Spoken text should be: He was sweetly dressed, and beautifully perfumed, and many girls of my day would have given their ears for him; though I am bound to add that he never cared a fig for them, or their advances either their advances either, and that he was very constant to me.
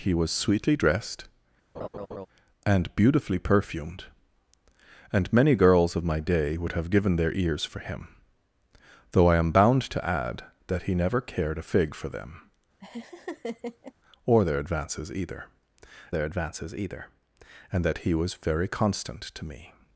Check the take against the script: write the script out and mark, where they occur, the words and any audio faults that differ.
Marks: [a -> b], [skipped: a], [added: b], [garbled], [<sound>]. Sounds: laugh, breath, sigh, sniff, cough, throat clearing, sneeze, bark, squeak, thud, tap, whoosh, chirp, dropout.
He was sweetly dressed, [laugh] and beautifully perfumed, and many girls of my day would have given their ears for him; though I am bound to add that he never cared a fig for them, [laugh] or their advances either their advances either, and that he was very constant to me.